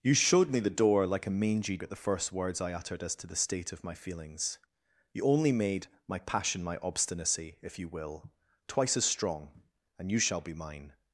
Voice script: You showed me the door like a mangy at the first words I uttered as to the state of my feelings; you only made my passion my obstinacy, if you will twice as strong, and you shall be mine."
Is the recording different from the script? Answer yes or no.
no